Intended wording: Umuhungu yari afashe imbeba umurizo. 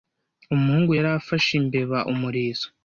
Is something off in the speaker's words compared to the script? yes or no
no